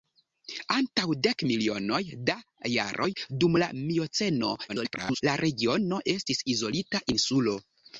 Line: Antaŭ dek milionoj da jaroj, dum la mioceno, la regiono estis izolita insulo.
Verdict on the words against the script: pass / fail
fail